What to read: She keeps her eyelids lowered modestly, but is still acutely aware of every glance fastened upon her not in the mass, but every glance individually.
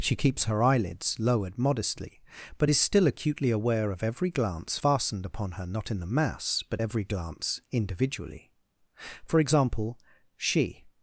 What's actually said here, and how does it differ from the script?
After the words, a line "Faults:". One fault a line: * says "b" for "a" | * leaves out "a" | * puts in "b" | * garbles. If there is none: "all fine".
She keeps her eyelids lowered modestly, but is still acutely aware of every glance fastened upon her not in the mass, but every glance individually. For example, she
Faults:
* puts in "For example she"